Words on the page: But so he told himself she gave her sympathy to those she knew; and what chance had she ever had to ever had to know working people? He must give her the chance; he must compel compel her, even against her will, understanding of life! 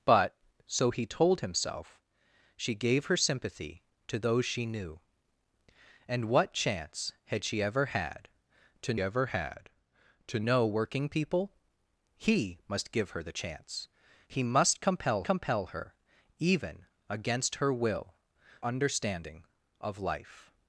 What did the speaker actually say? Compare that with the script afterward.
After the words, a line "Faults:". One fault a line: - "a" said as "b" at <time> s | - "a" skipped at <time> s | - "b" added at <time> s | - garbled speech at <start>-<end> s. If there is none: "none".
But so he told himself she gave her sympathy to those she knew; and what chance had she ever had to ever had to know working people? He must give her the chance; he must compel compel her, even against her will, understanding of life!
Faults:
none